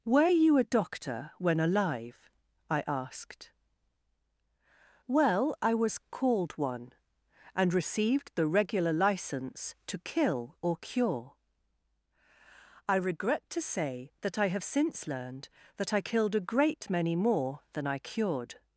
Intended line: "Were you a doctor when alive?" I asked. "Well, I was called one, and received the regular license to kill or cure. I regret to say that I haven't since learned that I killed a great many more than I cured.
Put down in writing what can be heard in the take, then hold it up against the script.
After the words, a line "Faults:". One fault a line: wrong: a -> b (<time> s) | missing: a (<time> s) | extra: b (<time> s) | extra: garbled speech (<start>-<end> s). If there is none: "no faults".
"Were you a doctor when alive?" I asked. "Well, I was called one, and received the regular license to kill or cure. I regret to say that I have since learned that I killed a great many more than I cured.
Faults:
wrong: haven't -> have (14.5 s)